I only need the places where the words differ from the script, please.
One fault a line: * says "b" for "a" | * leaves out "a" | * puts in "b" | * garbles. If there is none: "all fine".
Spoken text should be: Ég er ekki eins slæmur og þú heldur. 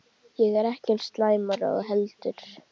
all fine